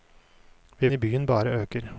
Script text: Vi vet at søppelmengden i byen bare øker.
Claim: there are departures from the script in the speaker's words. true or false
true